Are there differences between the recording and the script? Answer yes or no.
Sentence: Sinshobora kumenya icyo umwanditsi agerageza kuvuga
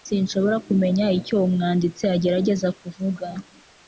no